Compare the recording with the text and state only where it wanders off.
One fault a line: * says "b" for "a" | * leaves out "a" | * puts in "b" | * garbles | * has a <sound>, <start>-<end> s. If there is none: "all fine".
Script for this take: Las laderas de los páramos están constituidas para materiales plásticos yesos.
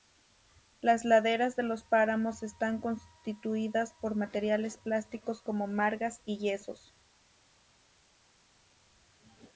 * says "por" for "para"
* puts in "como margas y"